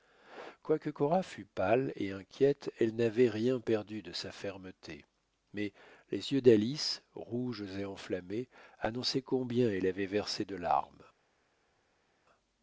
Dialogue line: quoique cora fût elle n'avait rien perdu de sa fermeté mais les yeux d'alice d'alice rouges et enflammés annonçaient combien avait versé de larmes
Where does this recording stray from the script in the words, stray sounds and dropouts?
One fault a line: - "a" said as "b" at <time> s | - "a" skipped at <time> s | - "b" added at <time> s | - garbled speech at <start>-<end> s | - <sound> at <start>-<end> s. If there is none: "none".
- "pâle et inquiète" added at 1.4 s
- "d'alice" skipped at 7.0 s
- "elle" added at 9.7 s